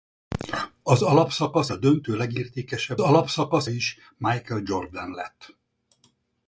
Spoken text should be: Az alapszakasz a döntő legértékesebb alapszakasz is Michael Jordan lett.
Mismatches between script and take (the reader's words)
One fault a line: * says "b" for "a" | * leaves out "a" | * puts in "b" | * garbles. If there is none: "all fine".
all fine